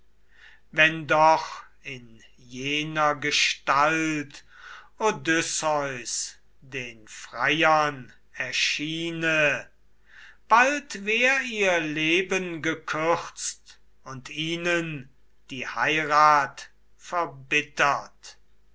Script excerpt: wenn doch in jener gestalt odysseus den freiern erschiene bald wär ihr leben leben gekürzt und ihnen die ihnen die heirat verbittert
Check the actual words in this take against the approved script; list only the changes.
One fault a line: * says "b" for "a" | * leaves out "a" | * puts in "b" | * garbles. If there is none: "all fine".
* leaves out "leben"
* leaves out "ihnen die"